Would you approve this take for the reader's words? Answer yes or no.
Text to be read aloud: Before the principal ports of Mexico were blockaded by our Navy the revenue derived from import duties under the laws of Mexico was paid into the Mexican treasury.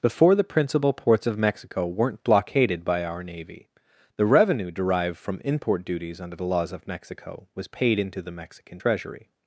no